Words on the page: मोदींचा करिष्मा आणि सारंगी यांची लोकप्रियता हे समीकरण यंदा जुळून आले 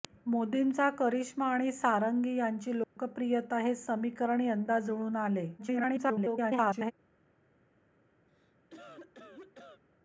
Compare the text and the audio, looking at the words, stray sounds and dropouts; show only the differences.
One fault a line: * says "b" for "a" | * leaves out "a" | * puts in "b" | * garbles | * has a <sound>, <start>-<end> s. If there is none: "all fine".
* has a dropout, 2.8-3.0 s
* garbles
* has a cough, 8.3-9.8 s